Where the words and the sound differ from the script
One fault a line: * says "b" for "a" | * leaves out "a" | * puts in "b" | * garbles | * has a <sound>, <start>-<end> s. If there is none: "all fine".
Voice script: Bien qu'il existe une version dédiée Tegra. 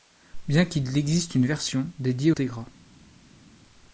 all fine